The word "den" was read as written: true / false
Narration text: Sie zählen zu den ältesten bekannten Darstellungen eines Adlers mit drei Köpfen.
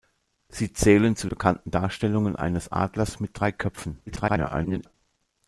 false